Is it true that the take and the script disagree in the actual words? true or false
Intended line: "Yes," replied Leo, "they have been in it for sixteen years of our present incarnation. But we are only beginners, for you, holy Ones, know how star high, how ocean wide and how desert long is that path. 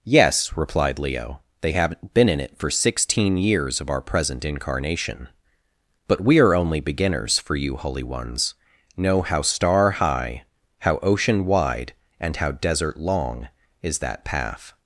true